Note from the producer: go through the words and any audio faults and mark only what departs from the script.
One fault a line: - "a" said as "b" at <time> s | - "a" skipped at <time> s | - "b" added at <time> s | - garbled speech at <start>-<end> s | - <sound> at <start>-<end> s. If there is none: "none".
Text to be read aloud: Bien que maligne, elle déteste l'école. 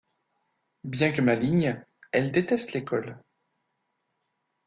none